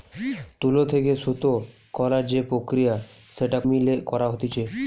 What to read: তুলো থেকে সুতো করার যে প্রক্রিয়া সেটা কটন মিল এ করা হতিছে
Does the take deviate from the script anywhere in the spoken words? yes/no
yes